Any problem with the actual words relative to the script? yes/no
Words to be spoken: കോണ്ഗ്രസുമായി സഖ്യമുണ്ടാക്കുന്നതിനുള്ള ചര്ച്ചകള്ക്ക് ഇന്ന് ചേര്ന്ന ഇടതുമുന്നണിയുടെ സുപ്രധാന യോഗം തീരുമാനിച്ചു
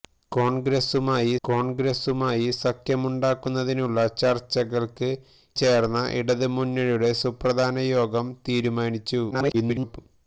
yes